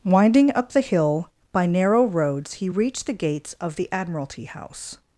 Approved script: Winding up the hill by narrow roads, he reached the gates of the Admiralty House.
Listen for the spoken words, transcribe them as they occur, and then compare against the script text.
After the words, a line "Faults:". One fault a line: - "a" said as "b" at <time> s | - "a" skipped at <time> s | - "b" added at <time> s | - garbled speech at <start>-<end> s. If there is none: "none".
Winding up the hill by narrow roads, he reached the gates of the Admiralty House.
Faults:
none